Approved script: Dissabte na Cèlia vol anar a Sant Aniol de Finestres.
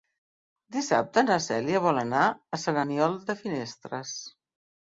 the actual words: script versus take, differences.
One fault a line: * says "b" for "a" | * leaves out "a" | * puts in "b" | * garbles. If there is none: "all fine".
all fine